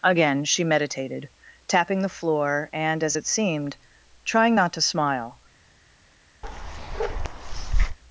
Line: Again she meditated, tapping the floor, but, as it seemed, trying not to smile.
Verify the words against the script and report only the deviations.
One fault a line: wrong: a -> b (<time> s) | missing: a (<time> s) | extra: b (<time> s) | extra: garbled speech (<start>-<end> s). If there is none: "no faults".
wrong: but -> and (2.7 s)